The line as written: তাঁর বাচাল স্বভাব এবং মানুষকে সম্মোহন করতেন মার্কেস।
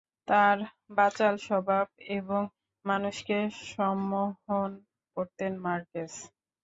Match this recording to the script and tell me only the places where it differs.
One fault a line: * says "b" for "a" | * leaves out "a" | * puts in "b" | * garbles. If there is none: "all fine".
all fine